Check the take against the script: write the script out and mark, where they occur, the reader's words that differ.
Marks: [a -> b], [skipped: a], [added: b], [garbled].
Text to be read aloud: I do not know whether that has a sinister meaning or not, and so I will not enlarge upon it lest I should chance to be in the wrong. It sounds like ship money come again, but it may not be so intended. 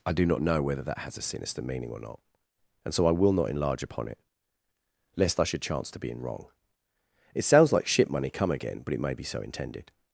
I do not know whether that has a sinister meaning or not, and so I will not enlarge upon it lest I should chance to be in [skipped: the] wrong. It sounds like ship money come again, but it may [skipped: not] be so intended.